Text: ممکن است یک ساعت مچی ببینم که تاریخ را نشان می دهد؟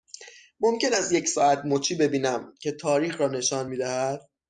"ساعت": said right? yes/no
yes